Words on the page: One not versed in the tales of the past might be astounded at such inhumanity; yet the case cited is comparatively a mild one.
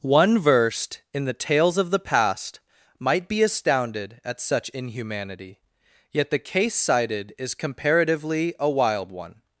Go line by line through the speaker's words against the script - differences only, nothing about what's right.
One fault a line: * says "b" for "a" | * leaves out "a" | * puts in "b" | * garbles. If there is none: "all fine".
* leaves out "not"
* says "wild" for "mild"